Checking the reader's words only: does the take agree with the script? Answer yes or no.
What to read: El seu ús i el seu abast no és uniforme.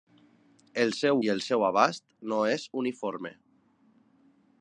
no